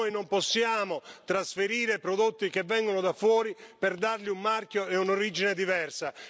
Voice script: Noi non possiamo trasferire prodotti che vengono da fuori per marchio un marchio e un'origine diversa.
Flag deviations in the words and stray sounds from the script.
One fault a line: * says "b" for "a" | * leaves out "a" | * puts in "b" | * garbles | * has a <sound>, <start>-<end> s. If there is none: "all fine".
* says "dargli" for "marchio"